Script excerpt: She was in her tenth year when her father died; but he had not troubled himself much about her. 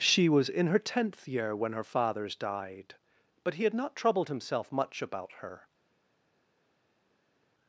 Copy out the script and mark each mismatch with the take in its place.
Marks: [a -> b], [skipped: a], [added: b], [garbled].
She was in her tenth year when her [father -> fathers] died; but he had not troubled himself much about her.